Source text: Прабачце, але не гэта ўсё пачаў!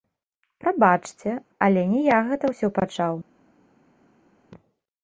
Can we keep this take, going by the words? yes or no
no